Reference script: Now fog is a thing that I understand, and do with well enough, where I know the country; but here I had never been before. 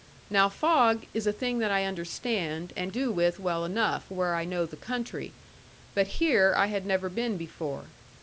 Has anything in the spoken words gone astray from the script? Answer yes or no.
no